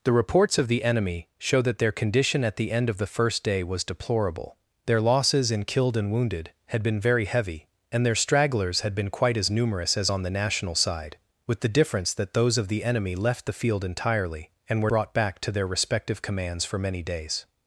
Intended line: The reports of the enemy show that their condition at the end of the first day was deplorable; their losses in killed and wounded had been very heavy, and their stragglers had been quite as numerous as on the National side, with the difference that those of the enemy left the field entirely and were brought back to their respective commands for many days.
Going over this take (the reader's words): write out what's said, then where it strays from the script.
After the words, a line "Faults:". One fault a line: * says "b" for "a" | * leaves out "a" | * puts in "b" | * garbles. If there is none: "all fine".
The reports of the enemy show that their condition at the end of the first day was deplorable; their losses in killed and wounded had been very heavy, and their stragglers had been quite as numerous as on the National side, with the difference that those of the enemy left the field entirely and were brought back to their respective commands for many days.
Faults:
all fine